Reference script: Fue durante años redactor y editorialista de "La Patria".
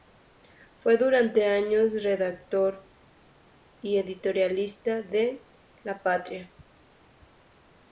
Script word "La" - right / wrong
right